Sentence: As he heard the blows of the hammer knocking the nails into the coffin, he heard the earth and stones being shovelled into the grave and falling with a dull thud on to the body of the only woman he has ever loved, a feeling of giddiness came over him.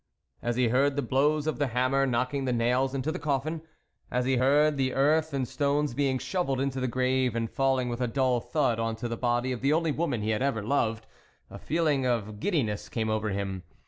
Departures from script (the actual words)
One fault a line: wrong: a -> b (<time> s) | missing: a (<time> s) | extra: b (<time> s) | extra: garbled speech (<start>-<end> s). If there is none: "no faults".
extra: as (4.1 s)
wrong: has -> had (10.3 s)